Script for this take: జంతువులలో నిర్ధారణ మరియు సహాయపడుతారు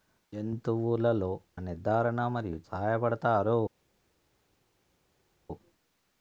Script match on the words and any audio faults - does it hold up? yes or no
yes